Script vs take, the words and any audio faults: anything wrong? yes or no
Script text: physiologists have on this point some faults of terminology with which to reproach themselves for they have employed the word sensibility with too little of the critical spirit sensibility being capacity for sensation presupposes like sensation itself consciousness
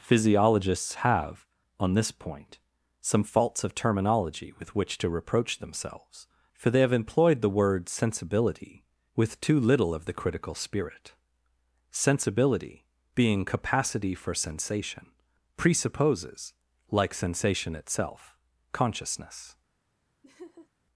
yes